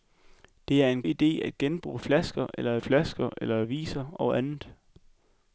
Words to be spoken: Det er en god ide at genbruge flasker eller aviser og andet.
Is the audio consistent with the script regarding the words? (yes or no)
no